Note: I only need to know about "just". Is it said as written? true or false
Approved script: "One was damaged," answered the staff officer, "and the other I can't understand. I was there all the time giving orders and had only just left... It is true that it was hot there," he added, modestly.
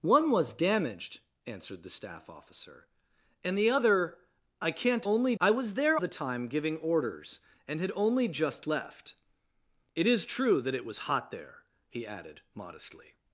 true